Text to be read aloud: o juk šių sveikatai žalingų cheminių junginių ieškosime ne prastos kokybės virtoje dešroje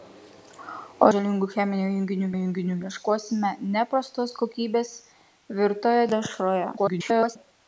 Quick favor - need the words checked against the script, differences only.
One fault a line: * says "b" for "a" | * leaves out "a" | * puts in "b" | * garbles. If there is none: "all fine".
* leaves out "juk šių sveikatai"
* puts in "junginių"
* garbles